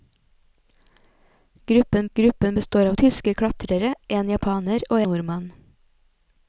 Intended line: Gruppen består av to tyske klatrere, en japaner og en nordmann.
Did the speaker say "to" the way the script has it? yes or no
no